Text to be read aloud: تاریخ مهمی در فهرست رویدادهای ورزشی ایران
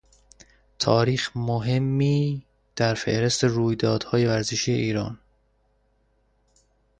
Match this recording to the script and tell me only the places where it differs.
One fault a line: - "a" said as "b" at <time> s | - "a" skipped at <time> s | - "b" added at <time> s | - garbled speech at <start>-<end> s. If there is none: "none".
none